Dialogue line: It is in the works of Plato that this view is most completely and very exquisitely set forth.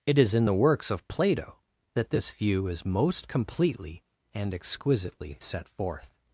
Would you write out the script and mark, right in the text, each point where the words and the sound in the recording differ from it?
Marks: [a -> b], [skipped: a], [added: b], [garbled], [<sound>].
It is in the works of Plato that this view is most completely and [skipped: very] exquisitely set forth.